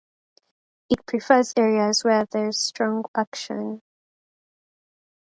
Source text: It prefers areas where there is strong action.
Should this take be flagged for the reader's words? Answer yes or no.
no